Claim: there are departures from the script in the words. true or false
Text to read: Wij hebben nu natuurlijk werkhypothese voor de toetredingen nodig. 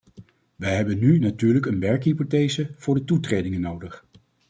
true